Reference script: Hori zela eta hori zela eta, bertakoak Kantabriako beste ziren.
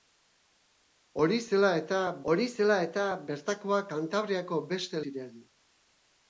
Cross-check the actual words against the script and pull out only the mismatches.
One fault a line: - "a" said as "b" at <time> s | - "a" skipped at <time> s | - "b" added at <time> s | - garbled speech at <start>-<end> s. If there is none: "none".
none